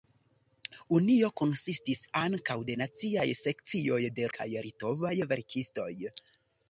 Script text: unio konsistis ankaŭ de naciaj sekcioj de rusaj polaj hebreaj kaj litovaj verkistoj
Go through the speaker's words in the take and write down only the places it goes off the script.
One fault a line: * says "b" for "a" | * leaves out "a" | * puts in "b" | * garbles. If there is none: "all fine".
* leaves out "rusaj polaj hebreaj"